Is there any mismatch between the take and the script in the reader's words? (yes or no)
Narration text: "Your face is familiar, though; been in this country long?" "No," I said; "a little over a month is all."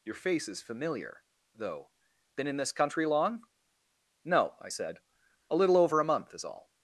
no